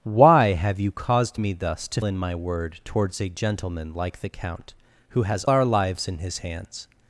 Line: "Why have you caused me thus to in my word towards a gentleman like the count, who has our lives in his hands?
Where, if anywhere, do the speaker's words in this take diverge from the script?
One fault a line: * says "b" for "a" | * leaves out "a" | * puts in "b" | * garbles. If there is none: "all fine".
all fine